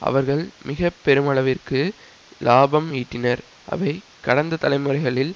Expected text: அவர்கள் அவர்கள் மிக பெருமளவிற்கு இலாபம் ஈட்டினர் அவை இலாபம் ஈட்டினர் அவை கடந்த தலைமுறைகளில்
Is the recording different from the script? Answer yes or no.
yes